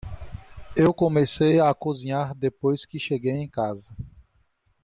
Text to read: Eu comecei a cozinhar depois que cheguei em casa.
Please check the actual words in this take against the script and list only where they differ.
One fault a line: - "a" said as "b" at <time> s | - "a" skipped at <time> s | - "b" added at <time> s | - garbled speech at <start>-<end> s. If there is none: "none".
none